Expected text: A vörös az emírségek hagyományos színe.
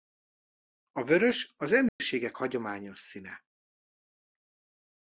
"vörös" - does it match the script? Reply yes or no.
yes